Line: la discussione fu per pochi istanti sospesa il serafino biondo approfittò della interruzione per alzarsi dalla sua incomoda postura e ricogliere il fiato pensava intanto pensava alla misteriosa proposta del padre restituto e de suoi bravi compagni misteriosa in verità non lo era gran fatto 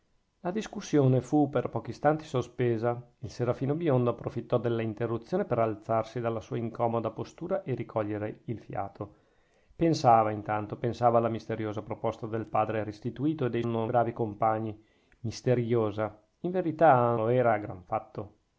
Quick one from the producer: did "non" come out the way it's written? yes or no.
no